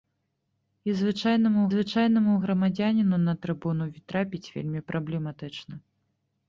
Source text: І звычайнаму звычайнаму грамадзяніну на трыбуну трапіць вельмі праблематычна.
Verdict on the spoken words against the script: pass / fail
pass